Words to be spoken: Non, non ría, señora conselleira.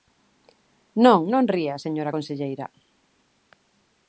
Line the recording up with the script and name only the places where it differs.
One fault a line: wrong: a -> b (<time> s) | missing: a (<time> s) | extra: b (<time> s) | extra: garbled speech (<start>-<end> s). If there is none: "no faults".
no faults